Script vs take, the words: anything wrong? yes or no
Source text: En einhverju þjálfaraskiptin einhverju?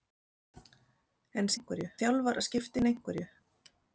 no